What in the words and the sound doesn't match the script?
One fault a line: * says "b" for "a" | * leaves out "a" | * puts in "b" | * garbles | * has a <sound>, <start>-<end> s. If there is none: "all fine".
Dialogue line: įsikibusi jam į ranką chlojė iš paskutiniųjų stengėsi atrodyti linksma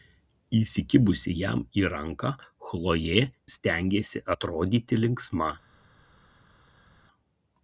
* leaves out "iš paskutiniųjų"